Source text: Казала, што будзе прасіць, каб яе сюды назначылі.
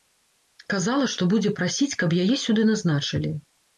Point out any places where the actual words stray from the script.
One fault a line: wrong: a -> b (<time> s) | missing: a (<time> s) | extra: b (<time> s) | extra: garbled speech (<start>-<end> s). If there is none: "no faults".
no faults